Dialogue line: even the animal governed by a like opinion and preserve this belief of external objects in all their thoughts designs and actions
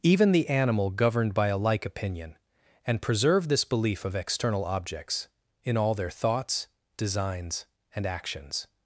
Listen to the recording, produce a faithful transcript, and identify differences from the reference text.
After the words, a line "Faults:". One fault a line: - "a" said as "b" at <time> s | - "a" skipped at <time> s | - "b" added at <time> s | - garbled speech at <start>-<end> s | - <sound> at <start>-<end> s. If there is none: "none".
even the animal governed by a like opinion and preserve this belief of external objects in all their thoughts designs and actions
Faults:
none